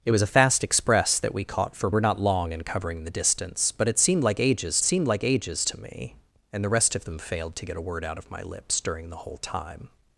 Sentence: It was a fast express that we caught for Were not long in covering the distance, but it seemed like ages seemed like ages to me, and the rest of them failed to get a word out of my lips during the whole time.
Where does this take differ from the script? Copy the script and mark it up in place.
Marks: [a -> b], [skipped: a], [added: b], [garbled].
It was a fast express that we caught for Were not long in covering the distance, but it seemed like ages seemed like ages to me, and the rest of them failed to get a word out of my lips during the whole time.